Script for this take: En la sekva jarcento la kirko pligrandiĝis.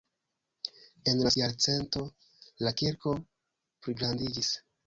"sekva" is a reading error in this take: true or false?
true